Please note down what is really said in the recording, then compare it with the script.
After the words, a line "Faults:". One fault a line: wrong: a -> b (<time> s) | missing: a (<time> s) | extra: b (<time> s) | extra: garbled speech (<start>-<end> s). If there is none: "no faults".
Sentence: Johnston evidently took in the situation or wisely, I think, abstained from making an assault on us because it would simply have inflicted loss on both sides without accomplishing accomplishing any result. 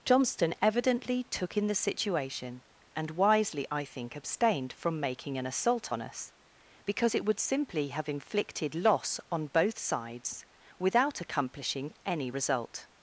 Johnston evidently took in the situation and wisely, I think, abstained from making an assault on us because it would simply have inflicted loss on both sides without accomplishing any result.
Faults:
wrong: or -> and (3.0 s)
missing: accomplishing (11.9 s)